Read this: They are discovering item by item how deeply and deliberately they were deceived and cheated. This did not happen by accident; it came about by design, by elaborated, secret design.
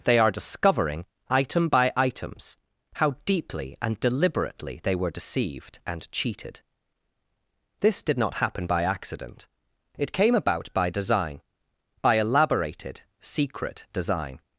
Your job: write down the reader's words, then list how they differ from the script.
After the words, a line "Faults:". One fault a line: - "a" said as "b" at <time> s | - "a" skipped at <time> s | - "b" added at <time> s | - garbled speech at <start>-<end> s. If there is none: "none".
They are discovering item by items how deeply and deliberately they were deceived and cheated. This did not happen by accident; it came about by design, by elaborated, secret design.
Faults:
- "item" said as "items" at 1.9 s